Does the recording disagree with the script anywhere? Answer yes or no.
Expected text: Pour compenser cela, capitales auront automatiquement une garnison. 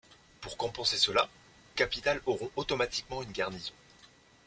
no